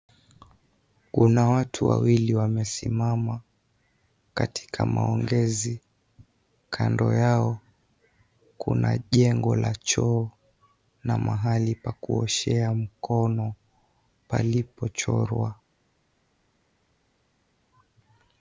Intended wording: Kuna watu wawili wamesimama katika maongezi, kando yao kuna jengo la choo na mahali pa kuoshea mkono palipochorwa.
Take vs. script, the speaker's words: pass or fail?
pass